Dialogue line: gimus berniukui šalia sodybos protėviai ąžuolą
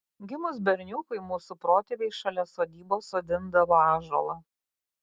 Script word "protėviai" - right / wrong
wrong